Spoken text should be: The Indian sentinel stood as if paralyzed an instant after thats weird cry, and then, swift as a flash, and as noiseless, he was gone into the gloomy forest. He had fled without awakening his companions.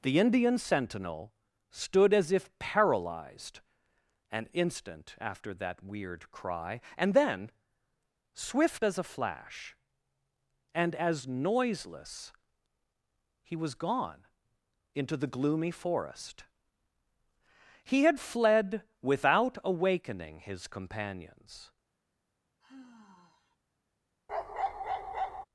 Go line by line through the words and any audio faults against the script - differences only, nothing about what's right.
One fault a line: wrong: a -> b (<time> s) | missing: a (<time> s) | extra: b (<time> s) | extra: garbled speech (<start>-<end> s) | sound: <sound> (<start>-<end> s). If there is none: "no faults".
wrong: thats -> that (5.5 s)
sound: sigh (22.6-23.6 s)
sound: bark (24.3-25.5 s)